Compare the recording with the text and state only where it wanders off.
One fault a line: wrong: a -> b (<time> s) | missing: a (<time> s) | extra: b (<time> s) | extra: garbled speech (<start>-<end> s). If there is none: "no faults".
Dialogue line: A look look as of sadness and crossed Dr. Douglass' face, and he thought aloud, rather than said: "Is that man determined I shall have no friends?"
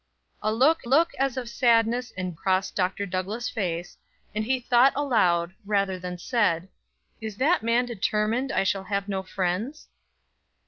no faults